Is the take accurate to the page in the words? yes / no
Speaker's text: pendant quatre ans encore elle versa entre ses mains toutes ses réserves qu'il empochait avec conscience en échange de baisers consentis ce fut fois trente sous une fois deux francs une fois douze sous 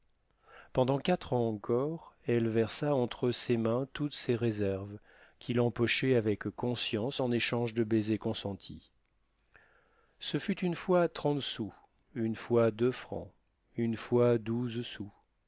no